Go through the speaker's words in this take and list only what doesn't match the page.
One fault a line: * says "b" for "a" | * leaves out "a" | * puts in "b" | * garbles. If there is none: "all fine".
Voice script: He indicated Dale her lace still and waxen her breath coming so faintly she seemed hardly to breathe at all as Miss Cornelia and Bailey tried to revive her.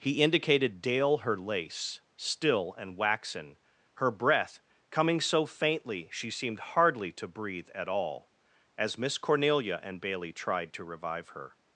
all fine